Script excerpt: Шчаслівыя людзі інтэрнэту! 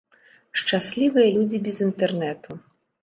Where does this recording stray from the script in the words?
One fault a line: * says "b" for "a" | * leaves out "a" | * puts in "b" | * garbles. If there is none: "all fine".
* puts in "без"